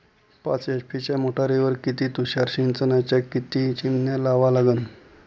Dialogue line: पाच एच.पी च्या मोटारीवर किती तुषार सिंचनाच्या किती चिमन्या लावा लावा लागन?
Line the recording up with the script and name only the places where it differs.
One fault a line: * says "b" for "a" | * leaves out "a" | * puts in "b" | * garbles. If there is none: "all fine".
* leaves out "लावा"